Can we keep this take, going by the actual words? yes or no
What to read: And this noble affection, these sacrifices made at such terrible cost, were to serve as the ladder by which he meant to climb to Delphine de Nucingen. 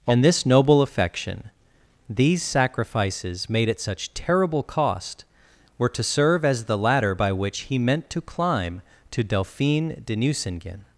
yes